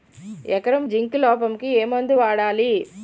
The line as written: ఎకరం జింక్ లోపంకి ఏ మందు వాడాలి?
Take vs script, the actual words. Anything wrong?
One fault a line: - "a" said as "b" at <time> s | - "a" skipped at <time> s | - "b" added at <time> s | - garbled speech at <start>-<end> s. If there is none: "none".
none